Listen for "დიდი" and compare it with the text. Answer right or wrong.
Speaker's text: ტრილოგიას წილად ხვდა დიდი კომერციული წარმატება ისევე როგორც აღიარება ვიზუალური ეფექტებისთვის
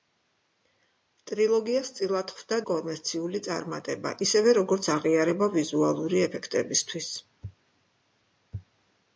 wrong